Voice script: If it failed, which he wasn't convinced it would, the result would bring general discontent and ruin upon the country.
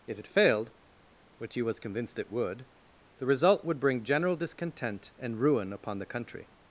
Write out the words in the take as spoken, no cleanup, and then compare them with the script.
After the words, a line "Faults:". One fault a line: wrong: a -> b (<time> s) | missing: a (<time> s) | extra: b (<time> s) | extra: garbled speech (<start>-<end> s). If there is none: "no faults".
If it failed, which he was convinced it would, the result would bring general discontent and ruin upon the country.
Faults:
wrong: wasn't -> was (1.6 s)